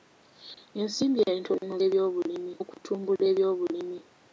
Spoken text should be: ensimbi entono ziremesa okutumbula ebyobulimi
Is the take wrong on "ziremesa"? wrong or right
wrong